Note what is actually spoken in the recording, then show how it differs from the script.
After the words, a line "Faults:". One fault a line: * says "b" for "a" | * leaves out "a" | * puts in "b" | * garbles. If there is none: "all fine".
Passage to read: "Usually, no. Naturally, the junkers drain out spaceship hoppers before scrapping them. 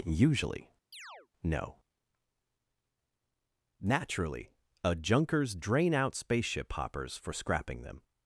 "Usually, no. Naturally, a junkers drain out spaceship hoppers for scrapping them.
Faults:
* says "a" for "the"
* says "for" for "before"